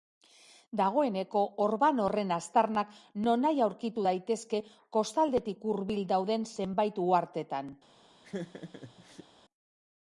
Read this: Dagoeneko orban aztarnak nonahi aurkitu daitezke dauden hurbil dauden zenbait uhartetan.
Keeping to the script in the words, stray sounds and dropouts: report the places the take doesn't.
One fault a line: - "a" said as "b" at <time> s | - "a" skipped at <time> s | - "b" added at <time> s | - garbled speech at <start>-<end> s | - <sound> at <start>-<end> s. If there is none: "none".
- "horren" added at 2.0 s
- "dauden" said as "kostaldetik" at 5.0 s
- laugh at 8.2-9.3 s